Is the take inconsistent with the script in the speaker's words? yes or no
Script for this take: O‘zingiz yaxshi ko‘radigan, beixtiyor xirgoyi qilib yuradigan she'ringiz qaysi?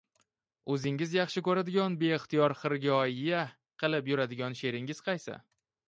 no